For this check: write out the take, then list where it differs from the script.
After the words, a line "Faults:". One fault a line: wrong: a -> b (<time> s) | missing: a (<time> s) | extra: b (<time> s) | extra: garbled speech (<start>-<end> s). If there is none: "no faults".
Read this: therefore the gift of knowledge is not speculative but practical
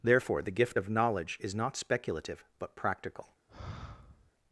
therefore the gift of knowledge is not speculative but practical
Faults:
no faults